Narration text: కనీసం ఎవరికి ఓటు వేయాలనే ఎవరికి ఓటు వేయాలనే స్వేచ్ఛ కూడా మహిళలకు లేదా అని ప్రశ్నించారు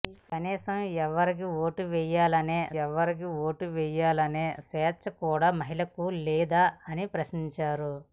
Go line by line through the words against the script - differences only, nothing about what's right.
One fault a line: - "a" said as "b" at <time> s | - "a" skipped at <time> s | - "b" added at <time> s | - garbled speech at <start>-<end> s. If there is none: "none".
none